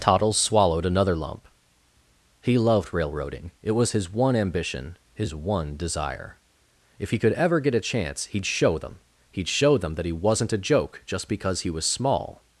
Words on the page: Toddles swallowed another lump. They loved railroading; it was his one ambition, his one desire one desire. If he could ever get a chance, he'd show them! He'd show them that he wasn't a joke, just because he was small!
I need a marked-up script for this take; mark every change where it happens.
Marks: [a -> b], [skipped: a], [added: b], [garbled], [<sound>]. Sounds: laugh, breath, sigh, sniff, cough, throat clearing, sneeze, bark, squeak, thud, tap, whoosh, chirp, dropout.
Toddles swallowed another lump. [They -> He] loved railroading; it was his one ambition, his one desire [skipped: one desire.] If he could ever get a chance, he'd show them! He'd show them that he wasn't a joke, just because he was small!